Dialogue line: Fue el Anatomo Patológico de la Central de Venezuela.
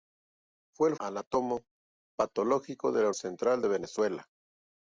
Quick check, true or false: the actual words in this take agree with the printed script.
true